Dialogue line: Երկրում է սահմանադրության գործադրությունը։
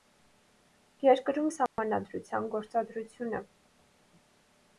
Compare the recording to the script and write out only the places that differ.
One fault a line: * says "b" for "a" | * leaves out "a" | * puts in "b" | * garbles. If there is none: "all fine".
all fine